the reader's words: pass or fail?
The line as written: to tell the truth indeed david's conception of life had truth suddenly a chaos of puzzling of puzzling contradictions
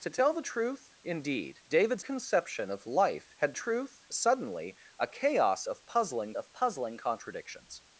pass